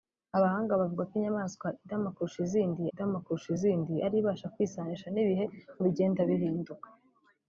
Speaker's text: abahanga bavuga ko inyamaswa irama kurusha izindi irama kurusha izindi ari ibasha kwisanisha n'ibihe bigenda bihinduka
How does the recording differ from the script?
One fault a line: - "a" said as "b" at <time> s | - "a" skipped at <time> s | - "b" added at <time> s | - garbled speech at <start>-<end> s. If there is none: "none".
none